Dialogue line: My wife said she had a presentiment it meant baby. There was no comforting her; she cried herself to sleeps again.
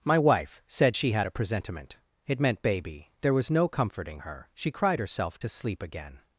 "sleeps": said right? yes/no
no